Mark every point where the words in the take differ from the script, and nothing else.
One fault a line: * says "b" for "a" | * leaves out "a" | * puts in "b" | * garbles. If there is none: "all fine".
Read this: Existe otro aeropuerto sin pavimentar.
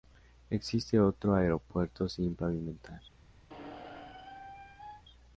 all fine